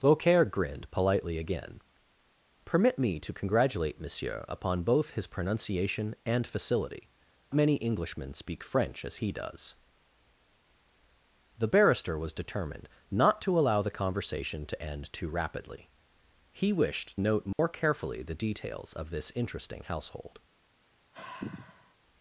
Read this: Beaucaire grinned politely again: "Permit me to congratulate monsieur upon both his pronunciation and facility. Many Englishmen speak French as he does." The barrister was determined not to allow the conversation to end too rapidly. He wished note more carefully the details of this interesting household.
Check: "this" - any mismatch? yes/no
no